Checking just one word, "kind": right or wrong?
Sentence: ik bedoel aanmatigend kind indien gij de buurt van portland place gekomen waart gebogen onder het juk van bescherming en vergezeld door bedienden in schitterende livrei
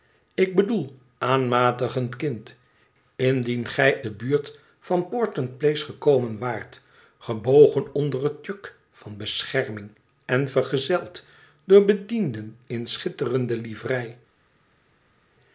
right